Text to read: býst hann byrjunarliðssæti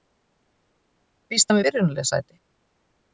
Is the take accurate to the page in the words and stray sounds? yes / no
yes